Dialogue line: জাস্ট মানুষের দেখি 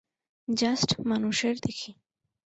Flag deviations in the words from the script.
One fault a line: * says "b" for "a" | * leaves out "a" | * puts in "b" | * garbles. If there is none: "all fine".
all fine